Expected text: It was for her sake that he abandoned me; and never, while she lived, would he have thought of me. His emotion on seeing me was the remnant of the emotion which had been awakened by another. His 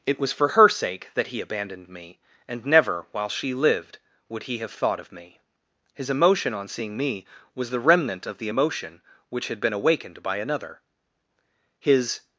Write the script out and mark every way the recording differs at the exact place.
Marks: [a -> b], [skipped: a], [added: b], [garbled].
It was for her sake that he abandoned me; and never, while she lived, would he have thought of me. His emotion on seeing me was the remnant of the emotion which had been awakened by another. His